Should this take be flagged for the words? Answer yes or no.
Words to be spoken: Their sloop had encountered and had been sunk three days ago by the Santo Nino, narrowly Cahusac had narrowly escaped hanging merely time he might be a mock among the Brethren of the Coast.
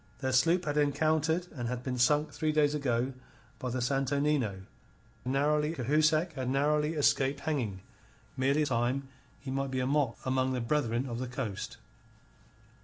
no